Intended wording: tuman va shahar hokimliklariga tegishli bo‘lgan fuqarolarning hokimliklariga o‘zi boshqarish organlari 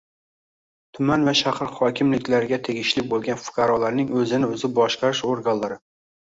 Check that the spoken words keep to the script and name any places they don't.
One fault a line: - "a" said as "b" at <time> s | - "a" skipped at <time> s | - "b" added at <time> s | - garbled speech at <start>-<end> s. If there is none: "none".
- "hokimliklariga" said as "o‘zini" at 4.2 s